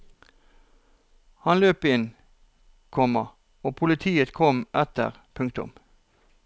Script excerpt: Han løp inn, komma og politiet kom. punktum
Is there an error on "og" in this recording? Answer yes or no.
no